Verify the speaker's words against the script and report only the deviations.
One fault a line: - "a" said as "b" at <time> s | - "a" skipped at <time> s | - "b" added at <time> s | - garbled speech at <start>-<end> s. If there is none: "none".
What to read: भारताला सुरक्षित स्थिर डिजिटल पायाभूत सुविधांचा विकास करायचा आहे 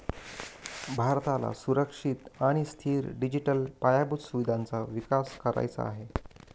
- "आणि" added at 2.4 s